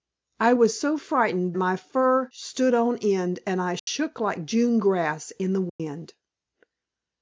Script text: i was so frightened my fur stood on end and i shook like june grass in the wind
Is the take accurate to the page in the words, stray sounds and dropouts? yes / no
no